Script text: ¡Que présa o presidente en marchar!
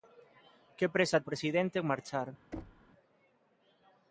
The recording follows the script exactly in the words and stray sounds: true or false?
false